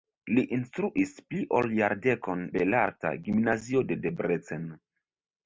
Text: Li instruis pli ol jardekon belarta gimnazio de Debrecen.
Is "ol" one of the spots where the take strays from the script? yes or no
no